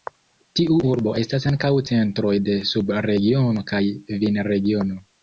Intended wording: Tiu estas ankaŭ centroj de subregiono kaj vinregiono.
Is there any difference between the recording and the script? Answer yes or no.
yes